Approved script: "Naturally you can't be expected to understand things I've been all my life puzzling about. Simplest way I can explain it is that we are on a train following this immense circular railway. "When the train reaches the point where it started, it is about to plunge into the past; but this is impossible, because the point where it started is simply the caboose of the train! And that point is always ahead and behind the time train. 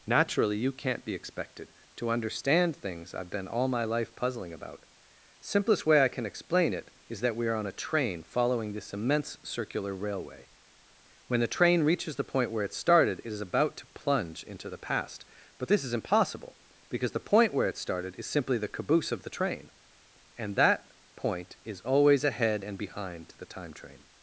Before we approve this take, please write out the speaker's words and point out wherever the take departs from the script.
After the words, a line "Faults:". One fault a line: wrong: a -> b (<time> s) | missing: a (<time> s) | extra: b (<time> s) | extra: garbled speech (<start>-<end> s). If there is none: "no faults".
"Naturally you can't be expected to understand things I've been all my life puzzling about. Simplest way I can explain it is that we are on a train following this immense circular railway. "When the train reaches the point where it started, it is about to plunge into the past; but this is impossible, because the point where it started is simply the caboose of the train! And that point is always ahead and behind the time train.
Faults:
no faults